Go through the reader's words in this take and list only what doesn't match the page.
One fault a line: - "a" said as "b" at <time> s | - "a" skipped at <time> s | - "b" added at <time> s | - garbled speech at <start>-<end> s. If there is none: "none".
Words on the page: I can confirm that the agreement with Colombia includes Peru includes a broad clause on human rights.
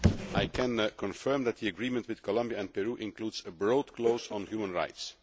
- "includes" said as "and" at 2.6 s